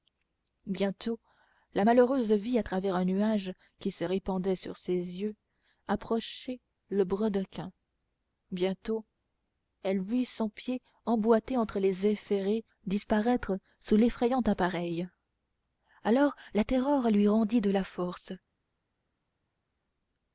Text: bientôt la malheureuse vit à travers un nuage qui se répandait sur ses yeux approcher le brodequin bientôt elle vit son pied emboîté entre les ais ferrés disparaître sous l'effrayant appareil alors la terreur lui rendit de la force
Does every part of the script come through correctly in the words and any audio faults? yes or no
yes